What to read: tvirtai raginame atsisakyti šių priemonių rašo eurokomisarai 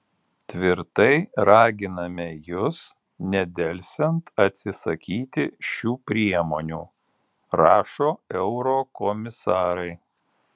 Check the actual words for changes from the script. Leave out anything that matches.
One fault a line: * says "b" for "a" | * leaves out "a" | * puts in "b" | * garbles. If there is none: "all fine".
* puts in "jus nedelsiant"